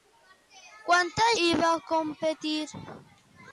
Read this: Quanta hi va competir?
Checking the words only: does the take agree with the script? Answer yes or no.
yes